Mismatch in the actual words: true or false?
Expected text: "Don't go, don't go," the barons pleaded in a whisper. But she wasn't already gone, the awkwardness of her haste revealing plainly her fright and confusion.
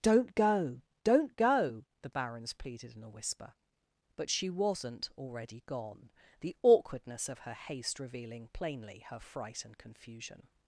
false